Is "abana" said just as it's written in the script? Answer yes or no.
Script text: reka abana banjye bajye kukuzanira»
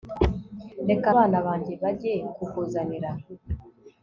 yes